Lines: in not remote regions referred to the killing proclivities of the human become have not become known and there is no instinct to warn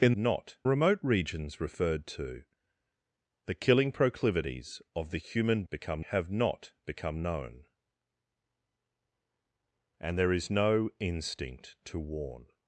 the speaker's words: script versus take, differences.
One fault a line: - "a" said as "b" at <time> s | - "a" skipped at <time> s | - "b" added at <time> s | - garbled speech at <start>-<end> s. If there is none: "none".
none